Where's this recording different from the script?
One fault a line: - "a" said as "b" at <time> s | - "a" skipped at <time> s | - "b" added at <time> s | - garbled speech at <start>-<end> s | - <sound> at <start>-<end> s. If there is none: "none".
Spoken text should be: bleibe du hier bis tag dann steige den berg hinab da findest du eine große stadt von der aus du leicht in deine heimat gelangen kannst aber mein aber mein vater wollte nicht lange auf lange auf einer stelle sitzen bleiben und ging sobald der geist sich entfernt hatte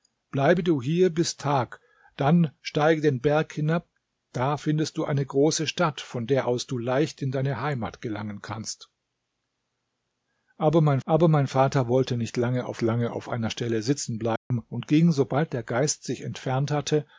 - dropout at 14.4-14.5 s